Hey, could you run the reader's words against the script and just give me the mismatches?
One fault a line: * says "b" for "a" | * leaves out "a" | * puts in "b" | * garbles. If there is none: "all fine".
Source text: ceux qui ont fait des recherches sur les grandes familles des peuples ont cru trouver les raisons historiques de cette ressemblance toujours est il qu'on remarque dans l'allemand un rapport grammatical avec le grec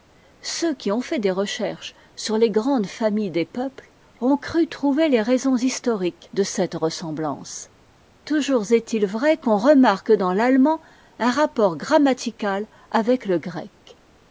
* puts in "vrai"